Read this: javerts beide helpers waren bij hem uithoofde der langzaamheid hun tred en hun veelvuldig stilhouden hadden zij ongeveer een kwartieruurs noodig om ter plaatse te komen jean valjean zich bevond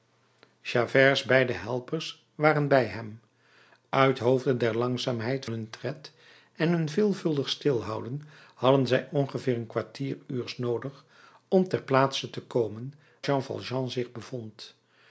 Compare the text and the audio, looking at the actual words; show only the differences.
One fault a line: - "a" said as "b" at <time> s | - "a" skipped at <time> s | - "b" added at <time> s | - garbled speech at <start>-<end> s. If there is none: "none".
none